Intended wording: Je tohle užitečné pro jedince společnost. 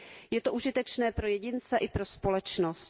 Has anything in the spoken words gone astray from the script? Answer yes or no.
yes